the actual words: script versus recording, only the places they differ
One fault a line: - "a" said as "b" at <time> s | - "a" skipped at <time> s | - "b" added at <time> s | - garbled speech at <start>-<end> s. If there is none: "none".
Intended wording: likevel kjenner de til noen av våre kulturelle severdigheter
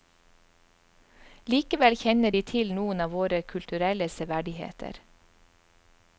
none